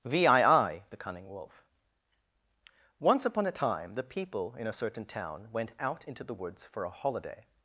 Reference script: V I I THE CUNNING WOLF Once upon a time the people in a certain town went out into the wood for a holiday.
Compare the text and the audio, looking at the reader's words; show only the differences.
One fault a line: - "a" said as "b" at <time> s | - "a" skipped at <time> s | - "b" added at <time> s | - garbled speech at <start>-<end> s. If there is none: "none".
- "wood" said as "woods" at 6.3 s